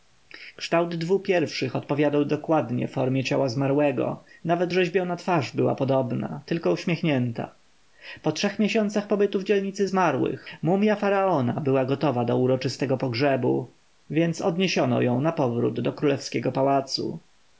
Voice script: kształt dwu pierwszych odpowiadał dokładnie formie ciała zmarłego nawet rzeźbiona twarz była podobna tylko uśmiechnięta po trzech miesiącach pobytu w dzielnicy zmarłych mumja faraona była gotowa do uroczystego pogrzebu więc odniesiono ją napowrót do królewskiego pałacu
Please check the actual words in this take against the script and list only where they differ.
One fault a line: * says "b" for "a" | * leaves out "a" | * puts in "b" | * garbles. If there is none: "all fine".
all fine